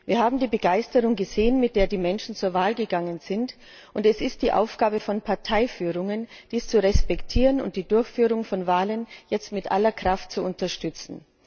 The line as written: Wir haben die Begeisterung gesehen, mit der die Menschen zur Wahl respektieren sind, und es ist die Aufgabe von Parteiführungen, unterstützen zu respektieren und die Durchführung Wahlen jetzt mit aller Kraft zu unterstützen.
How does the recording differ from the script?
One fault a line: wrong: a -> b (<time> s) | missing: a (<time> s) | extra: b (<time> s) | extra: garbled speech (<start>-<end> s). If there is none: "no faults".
wrong: respektieren -> gegangen (2.7 s)
wrong: unterstützen -> dies (6.5 s)
extra: von (8.4 s)